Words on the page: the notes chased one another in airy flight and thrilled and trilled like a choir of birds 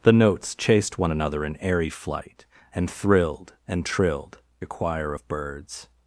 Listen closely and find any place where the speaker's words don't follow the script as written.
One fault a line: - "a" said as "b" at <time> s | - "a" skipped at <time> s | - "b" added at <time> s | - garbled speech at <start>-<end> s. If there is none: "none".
- "like" skipped at 4.4 s